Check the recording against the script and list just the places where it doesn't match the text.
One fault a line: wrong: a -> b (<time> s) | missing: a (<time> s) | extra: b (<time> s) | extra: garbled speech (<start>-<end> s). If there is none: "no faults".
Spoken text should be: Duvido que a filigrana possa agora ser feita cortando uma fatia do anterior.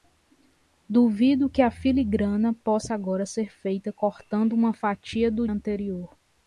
no faults